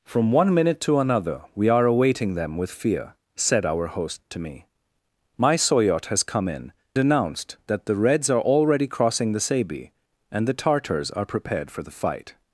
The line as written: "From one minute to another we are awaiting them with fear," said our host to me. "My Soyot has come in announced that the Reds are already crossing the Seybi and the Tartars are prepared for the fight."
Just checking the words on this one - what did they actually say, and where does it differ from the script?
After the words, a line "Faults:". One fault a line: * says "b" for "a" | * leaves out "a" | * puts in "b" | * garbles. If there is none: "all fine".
"From one minute to another we are awaiting them with fear," said our host to me. "My Soyot has come in announced that the Reds are already crossing the Seybi and the Tartars are prepared for the fight."
Faults:
all fine